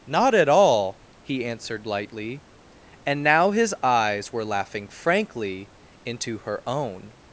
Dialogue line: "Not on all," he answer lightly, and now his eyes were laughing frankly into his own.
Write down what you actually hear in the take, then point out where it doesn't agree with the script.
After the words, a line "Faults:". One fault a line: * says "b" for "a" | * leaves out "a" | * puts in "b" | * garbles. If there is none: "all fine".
"Not at all," he answered lightly, and now his eyes were laughing frankly into her own.
Faults:
* says "at" for "on"
* says "answered" for "answer"
* says "her" for "his"